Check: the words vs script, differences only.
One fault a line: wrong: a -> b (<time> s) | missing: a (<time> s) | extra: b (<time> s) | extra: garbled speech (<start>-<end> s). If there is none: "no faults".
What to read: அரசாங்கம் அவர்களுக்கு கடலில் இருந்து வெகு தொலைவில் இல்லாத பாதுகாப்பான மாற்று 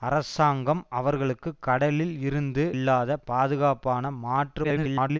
missing: வெகு தொலைவில் (2.6 s)
extra: garbled speech (4.6-5.2 s)